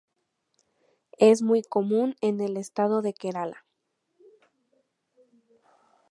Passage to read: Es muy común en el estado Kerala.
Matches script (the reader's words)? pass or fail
fail